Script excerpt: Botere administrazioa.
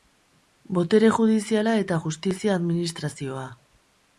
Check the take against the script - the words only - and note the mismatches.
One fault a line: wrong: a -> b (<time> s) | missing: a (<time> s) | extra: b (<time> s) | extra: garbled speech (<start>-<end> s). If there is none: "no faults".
extra: judiziala eta justizia (1.1 s)